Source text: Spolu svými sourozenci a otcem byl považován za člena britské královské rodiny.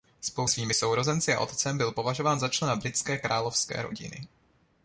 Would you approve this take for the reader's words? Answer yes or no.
yes